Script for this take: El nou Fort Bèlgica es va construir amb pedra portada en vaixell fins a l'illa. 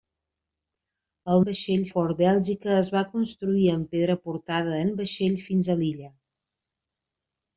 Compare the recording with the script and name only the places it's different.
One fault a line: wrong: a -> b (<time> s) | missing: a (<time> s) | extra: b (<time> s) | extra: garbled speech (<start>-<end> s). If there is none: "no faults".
wrong: nou -> vaixell (1.4 s)